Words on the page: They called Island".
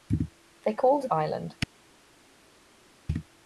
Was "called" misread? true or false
false